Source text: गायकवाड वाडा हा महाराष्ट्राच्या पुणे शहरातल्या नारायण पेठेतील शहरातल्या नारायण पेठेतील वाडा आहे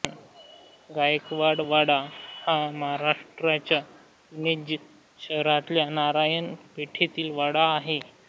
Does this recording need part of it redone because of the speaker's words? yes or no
yes